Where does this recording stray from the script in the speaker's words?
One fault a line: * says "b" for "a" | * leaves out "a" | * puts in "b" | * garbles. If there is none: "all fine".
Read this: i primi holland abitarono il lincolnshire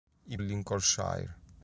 * leaves out "primi holland abitarono"